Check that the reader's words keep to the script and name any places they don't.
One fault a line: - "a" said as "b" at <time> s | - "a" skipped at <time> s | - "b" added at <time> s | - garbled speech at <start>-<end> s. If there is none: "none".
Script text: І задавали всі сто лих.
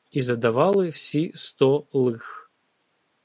none